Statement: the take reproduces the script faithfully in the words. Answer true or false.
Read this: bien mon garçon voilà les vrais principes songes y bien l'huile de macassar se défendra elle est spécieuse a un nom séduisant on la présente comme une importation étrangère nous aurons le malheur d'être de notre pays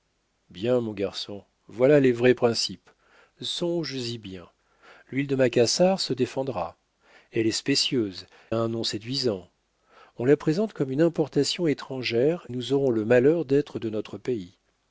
true